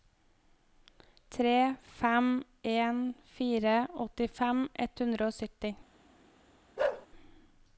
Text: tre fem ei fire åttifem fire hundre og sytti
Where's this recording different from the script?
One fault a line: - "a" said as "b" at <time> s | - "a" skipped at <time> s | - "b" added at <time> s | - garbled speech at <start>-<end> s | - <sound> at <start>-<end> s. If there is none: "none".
- "ei" said as "en" at 2.6 s
- "fire" said as "ett" at 4.8 s
- bark at 6.8-7.1 s